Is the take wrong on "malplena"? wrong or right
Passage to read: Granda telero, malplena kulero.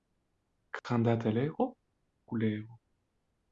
wrong